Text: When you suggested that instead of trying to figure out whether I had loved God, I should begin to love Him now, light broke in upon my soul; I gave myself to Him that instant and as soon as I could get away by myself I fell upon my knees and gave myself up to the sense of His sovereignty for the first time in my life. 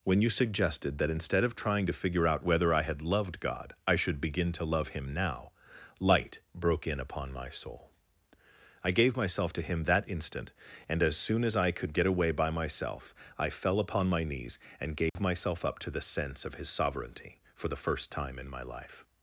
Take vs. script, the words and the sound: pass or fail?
fail